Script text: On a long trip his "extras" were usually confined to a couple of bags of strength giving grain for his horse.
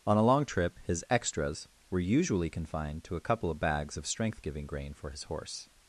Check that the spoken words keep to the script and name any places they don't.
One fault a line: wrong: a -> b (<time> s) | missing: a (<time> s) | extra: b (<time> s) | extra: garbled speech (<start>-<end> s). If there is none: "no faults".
no faults